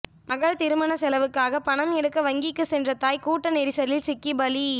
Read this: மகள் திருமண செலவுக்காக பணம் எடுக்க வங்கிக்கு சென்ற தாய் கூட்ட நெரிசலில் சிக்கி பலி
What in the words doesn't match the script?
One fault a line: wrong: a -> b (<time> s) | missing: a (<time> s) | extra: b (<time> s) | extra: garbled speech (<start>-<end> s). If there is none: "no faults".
no faults